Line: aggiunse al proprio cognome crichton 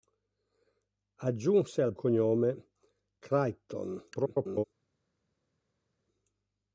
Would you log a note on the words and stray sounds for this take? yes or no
yes